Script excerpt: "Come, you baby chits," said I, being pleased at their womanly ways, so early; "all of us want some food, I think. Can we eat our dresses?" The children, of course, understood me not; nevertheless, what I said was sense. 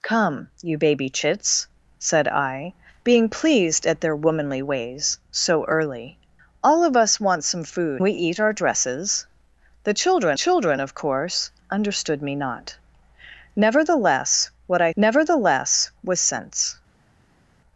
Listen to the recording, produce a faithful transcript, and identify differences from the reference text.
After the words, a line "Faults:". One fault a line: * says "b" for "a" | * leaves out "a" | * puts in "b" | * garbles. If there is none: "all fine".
"Come, you baby chits," said I, being pleased at their womanly ways, so early; "all of us want some food, we eat our dresses?" The children children, of course, understood me not; nevertheless, what I nevertheless was sense.
Faults:
* leaves out "I think Can"
* puts in "children"
* says "nevertheless" for "said"